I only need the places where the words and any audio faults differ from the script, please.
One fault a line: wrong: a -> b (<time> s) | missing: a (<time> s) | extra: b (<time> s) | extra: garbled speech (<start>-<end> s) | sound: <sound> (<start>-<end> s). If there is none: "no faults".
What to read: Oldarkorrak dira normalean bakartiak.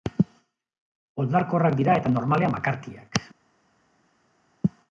extra: eta (2.0 s)